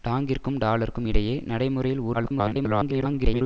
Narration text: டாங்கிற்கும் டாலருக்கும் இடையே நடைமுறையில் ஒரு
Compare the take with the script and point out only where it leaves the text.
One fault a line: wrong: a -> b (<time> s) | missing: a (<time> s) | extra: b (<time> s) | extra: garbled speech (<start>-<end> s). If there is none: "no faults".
extra: garbled speech (2.1-3.4 s)